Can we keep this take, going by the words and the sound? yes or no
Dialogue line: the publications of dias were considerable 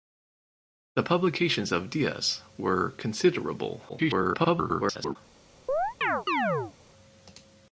no